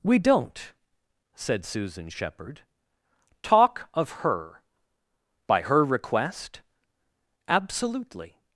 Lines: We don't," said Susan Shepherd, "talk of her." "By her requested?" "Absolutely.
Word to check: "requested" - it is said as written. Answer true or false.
false